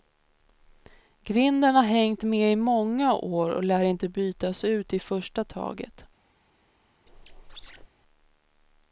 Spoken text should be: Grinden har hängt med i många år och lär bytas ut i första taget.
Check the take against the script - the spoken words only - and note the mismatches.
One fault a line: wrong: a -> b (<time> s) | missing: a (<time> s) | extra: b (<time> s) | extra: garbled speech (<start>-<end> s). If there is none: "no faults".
extra: inte (3.8 s)